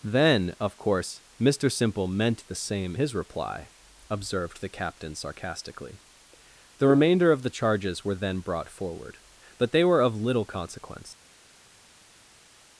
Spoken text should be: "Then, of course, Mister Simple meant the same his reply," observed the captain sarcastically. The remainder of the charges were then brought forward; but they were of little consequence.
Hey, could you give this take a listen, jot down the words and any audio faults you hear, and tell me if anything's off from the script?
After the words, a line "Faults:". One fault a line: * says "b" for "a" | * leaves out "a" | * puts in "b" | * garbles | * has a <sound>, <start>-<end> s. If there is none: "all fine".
"Then, of course, Mister Simple meant the same his reply," observed the captain sarcastically. The remainder of the charges were then brought forward; but they were of little consequence.
Faults:
all fine